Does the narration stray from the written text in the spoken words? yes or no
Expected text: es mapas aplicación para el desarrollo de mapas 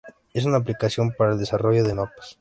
yes